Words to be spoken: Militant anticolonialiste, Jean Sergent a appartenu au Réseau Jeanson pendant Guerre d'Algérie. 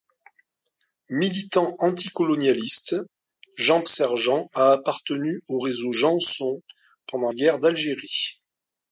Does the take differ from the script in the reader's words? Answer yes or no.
no